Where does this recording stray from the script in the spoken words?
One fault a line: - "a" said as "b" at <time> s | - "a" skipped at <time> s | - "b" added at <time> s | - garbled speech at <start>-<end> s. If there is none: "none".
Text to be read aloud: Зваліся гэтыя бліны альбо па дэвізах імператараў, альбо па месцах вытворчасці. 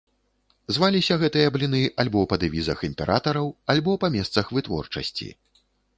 none